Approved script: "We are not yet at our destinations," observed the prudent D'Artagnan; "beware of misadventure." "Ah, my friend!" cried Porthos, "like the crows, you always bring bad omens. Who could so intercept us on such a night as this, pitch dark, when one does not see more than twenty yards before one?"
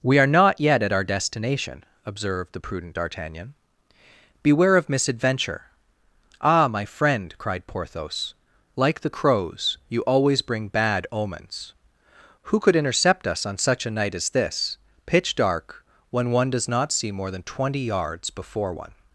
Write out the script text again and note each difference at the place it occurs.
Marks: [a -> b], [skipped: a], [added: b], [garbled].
"We are not yet at our [destinations," -> destination] observed the prudent D'Artagnan; "beware of misadventure." "Ah, my friend!" cried Porthos, "like the crows, you always bring bad omens. Who could [skipped: so] intercept us on such a night as this, pitch dark, when one does not see more than twenty yards before one?"